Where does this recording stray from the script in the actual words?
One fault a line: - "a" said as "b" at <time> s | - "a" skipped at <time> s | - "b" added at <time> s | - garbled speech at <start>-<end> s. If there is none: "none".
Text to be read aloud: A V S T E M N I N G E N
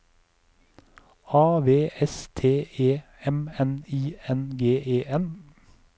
none